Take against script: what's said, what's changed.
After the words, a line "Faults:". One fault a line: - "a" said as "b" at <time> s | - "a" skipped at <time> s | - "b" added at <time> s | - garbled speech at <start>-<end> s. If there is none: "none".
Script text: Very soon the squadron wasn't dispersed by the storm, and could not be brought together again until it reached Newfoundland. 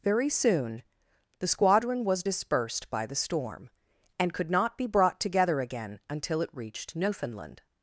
Very soon the squadron was dispersed by the storm, and could not be brought together again until it reached Newfoundland.
Faults:
- "wasn't" said as "was" at 2.0 s